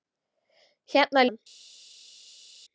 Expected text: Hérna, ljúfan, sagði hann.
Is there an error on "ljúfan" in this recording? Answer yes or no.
yes